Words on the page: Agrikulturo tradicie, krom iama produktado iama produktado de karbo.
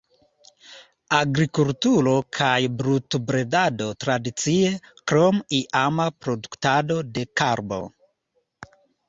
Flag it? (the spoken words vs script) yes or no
yes